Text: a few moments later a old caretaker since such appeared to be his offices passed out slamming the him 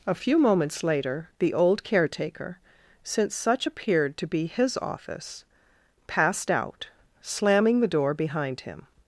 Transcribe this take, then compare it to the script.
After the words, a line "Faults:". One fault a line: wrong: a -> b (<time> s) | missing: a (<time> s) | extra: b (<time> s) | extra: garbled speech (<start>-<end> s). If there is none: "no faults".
a few moments later the old caretaker since such appeared to be his office passed out slamming the door behind him
Faults:
wrong: a -> the (1.4 s)
wrong: offices -> office (4.8 s)
extra: door behind (7.9 s)